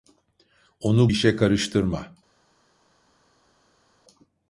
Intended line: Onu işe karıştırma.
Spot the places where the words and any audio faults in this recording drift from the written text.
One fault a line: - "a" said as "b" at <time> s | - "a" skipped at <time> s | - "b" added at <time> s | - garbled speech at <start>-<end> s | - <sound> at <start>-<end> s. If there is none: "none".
none